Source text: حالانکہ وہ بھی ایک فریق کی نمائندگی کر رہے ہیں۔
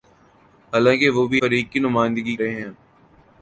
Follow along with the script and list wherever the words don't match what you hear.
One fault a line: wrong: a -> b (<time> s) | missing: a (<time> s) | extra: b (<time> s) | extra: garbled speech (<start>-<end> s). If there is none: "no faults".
missing: ایک (1.4 s)
missing: کر (2.4 s)